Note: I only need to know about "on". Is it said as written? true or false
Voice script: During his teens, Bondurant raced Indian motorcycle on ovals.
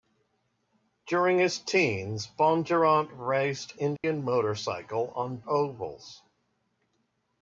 true